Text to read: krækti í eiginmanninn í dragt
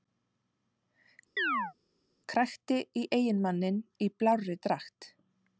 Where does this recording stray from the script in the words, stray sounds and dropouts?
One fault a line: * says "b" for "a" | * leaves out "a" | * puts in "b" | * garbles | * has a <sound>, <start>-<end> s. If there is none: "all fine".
* has a chirp, 1.4-1.7 s
* puts in "blárri"